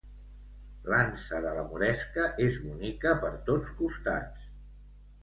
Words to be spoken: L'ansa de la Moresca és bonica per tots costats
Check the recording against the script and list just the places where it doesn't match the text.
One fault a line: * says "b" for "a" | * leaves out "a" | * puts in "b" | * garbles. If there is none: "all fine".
all fine